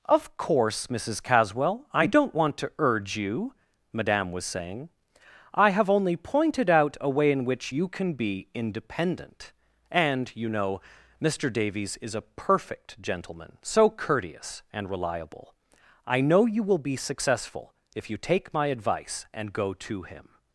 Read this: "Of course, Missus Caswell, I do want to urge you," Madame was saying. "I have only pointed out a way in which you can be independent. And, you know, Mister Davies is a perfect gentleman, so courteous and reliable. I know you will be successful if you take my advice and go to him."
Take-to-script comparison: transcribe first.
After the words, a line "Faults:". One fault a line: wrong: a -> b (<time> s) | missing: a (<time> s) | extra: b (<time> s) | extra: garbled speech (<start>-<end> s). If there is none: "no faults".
"Of course, Missus Caswell, I don't want to urge you," Madame was saying. "I have only pointed out a way in which you can be independent. And, you know, Mister Davies is a perfect gentleman, so courteous and reliable. I know you will be successful if you take my advice and go to him."
Faults:
wrong: do -> don't (2.1 s)